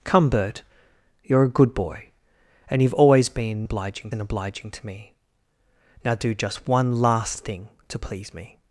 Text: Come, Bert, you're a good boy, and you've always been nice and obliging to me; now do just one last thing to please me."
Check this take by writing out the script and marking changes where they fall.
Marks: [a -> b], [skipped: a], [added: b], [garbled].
Come, Bert, you're a good boy, and you've always been [nice -> obliging] and obliging to me; now do just one last thing to please me."